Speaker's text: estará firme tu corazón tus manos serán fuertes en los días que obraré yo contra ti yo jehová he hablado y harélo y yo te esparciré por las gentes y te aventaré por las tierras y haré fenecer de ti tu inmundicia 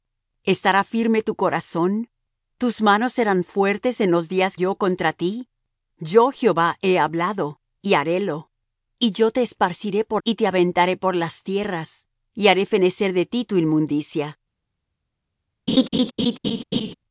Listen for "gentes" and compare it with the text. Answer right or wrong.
wrong